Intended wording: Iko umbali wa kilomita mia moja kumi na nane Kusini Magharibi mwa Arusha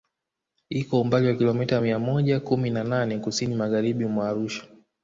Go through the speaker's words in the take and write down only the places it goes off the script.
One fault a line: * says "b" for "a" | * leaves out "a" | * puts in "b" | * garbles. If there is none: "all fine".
all fine